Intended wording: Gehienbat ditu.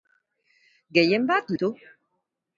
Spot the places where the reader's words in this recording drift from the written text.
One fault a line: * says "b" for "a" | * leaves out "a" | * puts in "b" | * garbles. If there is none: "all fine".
all fine